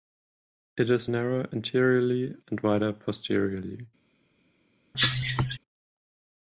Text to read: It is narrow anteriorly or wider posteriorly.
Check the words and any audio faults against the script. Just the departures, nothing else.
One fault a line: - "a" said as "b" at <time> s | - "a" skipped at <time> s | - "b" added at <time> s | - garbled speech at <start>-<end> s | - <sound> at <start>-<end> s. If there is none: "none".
- "or" said as "and" at 2.5 s
- cough at 4.9-5.6 s